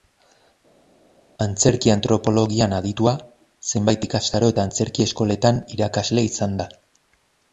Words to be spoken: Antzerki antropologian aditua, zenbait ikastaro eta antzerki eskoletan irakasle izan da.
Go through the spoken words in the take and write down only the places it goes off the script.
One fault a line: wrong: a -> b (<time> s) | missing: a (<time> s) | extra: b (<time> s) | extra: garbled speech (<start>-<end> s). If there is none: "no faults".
no faults